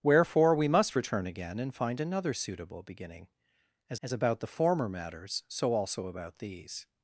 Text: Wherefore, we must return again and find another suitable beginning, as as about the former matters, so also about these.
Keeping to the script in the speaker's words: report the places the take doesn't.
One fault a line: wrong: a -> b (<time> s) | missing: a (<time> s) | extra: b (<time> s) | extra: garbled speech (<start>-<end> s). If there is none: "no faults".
no faults